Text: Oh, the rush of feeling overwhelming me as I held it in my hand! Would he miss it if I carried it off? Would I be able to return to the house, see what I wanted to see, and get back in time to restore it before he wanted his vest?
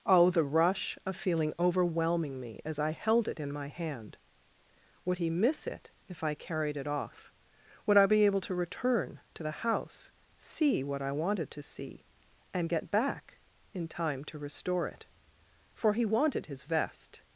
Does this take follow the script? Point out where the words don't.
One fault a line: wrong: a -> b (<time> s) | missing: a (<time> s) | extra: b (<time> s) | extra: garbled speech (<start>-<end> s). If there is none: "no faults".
wrong: before -> for (15.7 s)